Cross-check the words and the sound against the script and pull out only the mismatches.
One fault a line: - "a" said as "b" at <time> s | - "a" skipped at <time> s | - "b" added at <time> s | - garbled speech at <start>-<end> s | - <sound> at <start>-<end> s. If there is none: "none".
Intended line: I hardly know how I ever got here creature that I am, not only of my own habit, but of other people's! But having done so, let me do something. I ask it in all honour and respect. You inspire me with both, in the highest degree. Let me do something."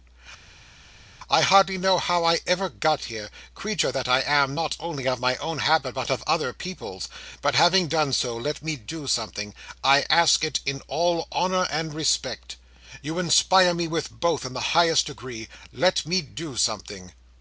none